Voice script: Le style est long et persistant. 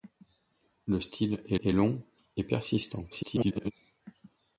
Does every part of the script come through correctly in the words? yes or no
no